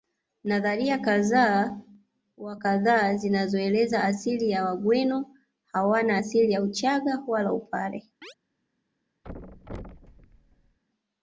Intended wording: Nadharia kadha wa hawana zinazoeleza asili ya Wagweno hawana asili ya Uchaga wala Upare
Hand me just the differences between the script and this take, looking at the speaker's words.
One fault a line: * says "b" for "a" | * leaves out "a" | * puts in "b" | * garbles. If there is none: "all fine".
* says "kadha" for "hawana"